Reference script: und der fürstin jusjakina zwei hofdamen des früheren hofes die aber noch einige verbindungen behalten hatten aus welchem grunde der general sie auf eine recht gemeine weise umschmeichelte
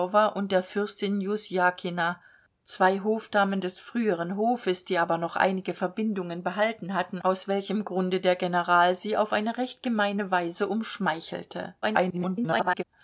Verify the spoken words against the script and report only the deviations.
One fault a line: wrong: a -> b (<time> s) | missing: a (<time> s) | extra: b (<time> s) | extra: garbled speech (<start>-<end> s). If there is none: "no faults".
extra: garbled speech (11.8-12.8 s)